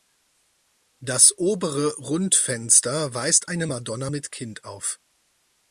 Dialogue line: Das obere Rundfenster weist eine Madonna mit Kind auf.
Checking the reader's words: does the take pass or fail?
pass